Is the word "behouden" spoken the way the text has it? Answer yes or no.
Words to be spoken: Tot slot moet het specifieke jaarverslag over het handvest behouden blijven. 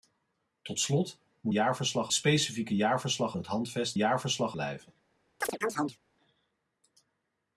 no